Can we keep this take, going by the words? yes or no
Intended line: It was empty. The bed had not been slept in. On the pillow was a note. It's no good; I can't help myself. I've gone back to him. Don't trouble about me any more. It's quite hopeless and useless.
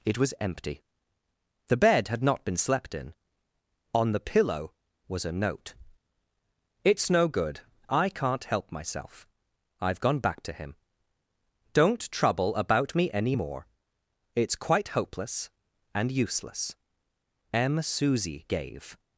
no